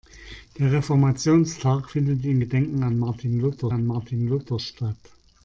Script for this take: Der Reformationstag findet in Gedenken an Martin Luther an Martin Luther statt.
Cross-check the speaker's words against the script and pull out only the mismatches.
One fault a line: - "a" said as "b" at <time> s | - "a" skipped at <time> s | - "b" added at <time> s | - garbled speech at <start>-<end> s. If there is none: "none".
none